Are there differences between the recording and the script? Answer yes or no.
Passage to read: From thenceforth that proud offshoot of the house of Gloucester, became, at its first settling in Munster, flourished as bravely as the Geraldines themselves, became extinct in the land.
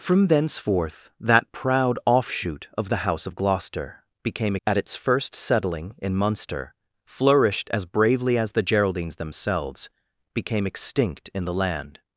no